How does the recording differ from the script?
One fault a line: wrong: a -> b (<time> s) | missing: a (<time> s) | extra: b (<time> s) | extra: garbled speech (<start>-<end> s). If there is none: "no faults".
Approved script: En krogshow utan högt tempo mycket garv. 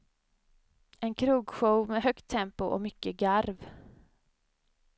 wrong: utan -> med (1.9 s)
extra: och (2.6 s)